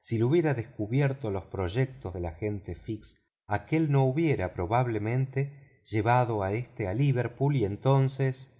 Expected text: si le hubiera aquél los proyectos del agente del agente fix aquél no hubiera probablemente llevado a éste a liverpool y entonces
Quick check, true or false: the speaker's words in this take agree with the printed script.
false